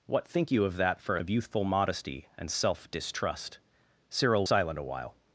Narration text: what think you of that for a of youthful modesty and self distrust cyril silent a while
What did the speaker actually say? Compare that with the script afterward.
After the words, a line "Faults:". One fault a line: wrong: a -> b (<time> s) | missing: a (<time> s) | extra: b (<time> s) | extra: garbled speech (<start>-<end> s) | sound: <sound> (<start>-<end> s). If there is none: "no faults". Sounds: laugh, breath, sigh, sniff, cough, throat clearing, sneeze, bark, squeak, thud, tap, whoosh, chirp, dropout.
what think you of that for a of youthful modesty and self distrust cyril silent a while
Faults:
no faults